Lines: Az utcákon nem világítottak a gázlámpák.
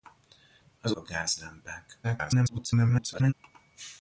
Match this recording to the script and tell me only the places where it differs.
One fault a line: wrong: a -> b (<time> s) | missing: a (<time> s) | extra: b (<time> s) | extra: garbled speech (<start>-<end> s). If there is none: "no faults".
missing: utcákon nem világítottak (0.9 s)
extra: garbled speech (2.0-3.3 s)